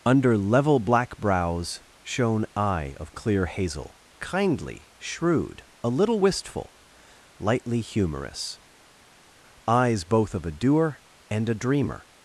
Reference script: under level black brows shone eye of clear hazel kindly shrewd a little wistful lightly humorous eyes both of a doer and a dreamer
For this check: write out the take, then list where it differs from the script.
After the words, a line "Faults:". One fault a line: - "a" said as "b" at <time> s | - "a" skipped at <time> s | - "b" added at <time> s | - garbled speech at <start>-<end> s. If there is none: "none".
under level black brows shone eye of clear hazel kindly shrewd a little wistful lightly humorous eyes both of a doer and a dreamer
Faults:
none